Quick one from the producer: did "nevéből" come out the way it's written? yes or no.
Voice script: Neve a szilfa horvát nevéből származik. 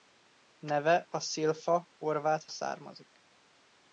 no